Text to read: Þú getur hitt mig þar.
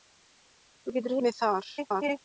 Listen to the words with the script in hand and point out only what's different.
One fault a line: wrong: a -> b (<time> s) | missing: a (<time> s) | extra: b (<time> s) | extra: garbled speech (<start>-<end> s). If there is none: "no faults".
missing: hitt (1.2 s)
extra: garbled speech (1.8-2.2 s)